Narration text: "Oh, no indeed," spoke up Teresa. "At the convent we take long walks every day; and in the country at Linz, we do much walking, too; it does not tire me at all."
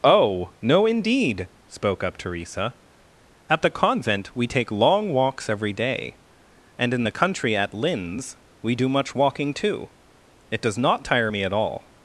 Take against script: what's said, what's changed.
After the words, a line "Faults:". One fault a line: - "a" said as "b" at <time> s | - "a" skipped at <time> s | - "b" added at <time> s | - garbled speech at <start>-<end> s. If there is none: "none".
"Oh, no indeed," spoke up Teresa. "At the convent we take long walks every day; and in the country at Linz, we do much walking, too; it does not tire me at all."
Faults:
none